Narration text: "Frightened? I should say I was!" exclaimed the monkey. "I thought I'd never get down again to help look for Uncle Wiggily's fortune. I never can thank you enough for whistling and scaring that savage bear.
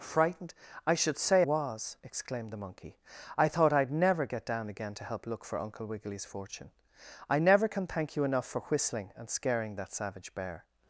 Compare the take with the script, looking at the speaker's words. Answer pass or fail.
fail